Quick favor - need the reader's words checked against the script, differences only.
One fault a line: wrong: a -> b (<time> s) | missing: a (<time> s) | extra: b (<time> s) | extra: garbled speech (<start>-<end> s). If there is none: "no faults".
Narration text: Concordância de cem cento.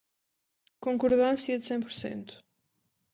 extra: por (1.8 s)